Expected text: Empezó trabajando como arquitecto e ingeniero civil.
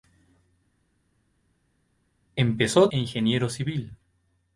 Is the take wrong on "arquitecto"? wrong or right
wrong